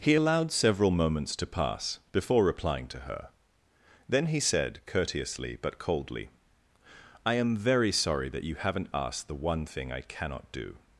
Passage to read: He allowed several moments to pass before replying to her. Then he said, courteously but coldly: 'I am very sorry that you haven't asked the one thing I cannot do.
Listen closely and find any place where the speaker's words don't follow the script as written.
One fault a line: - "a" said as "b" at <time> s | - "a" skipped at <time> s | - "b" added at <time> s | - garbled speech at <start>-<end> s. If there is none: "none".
none